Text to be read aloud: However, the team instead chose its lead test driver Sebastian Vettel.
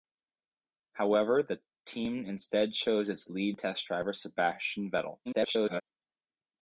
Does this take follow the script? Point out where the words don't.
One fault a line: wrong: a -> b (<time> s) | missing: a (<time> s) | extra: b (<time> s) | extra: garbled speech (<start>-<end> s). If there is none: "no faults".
extra: garbled speech (5.3-5.8 s)